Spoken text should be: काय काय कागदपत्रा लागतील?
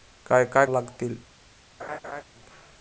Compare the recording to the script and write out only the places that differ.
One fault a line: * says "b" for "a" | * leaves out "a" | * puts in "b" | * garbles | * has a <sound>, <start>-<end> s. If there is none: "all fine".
* leaves out "कागदपत्रा"
* has a laugh, 1.8-2.2 s